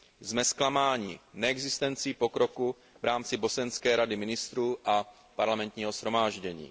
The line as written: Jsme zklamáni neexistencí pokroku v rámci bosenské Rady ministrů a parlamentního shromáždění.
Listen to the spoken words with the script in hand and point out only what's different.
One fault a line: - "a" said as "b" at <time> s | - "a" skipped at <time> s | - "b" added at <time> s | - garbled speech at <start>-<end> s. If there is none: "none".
none